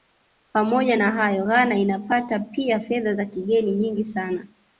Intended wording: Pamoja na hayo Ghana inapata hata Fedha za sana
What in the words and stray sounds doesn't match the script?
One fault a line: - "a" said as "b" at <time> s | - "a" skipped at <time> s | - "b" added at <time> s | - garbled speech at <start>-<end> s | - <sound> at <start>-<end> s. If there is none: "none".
- "hata" said as "pia" at 2.4 s
- "kigeni nyingi" added at 3.3 s